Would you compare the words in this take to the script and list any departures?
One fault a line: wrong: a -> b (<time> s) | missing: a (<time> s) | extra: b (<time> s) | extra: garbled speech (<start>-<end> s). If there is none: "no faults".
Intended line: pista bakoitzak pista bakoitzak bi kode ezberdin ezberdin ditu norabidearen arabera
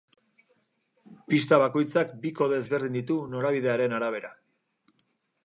missing: pista bakoitzak (2.1 s)
missing: ezberdin (3.0 s)